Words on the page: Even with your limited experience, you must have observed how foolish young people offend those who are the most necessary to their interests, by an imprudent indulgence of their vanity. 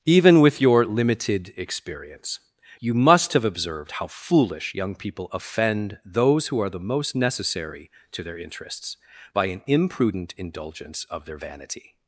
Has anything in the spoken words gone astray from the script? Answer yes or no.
no